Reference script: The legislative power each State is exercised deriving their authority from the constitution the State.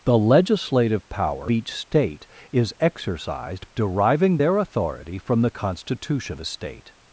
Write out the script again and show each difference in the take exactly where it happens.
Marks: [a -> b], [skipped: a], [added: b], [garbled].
The legislative power each State is exercised deriving their authority from the constitution the State.